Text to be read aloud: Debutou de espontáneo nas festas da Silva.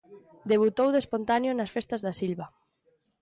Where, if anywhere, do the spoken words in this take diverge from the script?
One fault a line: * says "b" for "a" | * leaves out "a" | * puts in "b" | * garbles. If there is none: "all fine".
all fine